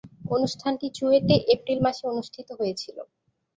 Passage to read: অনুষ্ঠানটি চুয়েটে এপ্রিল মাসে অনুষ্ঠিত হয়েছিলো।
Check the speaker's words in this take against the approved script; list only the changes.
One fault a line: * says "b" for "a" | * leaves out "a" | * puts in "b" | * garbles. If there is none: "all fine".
all fine